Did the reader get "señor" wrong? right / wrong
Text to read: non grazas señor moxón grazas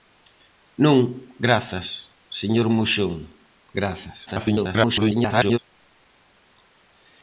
right